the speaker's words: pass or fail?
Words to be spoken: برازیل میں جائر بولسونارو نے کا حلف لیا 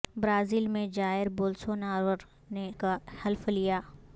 pass